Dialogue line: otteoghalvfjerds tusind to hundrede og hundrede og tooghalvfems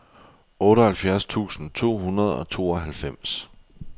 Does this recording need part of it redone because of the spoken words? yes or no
yes